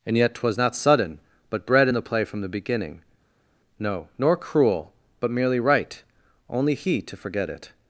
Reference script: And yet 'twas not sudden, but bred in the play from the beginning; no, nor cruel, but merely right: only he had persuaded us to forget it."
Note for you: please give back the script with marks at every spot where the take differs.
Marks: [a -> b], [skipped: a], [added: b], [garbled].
And yet 'twas not sudden, but bred in the play from the beginning; no, nor cruel, but merely right: only he [skipped: had persuaded us] to forget it."